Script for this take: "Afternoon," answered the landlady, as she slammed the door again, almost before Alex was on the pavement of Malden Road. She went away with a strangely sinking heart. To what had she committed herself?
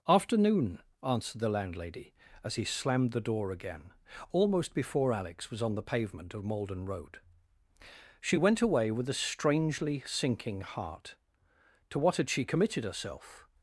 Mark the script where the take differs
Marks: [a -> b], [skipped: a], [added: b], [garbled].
"Afternoon," answered the landlady, as [she -> he] slammed the door again, almost before Alex was on the pavement of Malden Road. She went away with a strangely sinking heart. To what had she committed herself?